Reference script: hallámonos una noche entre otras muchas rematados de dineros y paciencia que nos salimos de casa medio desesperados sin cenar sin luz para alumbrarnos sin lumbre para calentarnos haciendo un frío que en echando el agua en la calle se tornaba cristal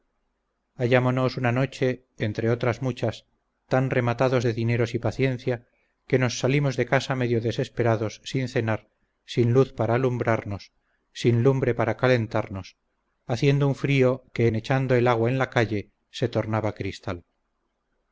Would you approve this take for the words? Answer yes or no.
no